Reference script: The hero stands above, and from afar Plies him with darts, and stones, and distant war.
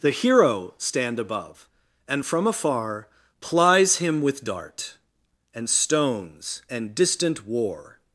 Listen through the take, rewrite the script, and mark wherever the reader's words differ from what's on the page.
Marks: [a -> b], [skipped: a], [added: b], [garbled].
The hero [stands -> stand] above, and from afar Plies him with [darts, -> dart] and stones, and distant war.